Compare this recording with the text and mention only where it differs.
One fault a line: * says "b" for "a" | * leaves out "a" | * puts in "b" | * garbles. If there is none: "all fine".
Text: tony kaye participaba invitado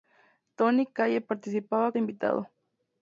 all fine